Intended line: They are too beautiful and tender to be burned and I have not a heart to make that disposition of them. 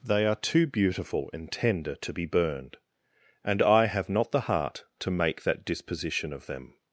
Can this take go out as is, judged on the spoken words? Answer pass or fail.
fail